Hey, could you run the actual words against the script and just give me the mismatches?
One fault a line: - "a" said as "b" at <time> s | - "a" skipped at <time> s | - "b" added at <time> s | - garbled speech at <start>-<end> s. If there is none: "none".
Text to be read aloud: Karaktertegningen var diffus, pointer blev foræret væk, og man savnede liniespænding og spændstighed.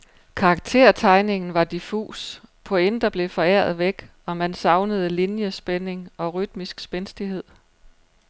- "rytmisk" added at 6.3 s